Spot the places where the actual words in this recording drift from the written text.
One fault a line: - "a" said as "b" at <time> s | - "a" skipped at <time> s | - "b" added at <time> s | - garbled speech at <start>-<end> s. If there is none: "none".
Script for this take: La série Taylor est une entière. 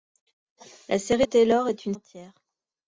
none